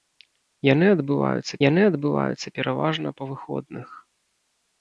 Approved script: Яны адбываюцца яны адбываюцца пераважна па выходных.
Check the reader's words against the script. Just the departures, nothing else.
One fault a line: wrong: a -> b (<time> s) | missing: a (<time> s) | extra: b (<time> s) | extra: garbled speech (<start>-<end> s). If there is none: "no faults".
no faults